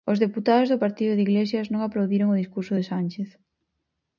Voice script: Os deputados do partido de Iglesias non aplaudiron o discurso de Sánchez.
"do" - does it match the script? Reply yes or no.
yes